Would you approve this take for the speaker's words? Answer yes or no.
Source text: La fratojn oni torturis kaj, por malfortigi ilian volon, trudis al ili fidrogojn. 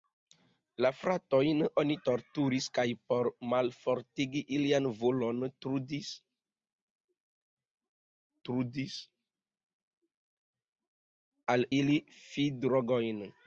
no